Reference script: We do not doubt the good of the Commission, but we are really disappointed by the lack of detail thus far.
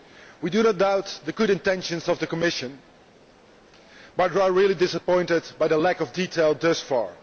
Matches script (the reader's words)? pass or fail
fail